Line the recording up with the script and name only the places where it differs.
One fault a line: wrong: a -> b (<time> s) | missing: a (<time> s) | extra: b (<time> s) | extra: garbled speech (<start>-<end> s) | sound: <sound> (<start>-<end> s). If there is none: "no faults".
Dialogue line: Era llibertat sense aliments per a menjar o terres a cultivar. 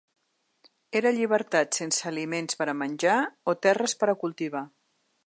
extra: per (4.0 s)